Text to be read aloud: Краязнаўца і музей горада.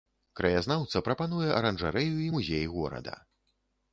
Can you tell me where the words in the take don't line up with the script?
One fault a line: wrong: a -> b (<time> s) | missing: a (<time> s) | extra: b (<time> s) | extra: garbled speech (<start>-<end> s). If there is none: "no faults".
extra: прапануе аранжарэю (1.1 s)